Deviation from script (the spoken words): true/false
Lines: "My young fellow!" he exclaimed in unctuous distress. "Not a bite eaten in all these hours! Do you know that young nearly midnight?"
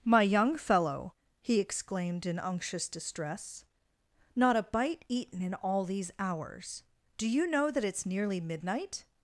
true